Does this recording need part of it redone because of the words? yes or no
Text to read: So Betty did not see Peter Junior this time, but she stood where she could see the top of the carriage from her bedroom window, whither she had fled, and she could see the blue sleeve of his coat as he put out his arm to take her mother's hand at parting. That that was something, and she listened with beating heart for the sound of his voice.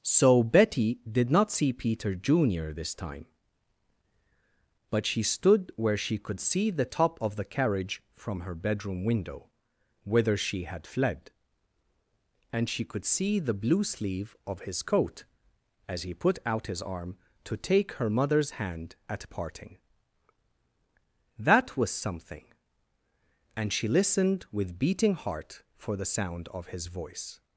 yes